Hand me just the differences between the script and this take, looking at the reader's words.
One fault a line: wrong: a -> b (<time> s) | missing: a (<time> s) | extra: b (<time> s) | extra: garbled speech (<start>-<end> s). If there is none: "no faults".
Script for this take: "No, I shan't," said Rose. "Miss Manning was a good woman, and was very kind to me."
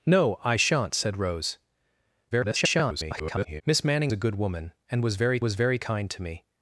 extra: garbled speech (2.3-3.6 s)
missing: was (4.1 s)
extra: was very (5.4 s)